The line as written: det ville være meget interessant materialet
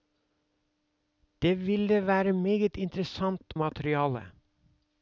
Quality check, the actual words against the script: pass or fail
pass